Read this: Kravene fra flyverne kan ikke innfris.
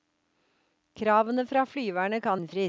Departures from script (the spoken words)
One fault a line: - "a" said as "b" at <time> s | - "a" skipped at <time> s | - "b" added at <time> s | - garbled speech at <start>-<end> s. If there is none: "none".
- "ikke" skipped at 2.4 s